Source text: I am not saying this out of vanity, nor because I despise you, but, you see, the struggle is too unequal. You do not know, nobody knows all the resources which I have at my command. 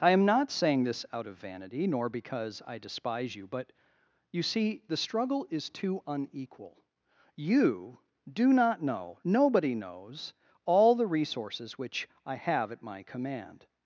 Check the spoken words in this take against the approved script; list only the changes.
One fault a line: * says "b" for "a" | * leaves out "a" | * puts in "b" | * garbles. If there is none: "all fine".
all fine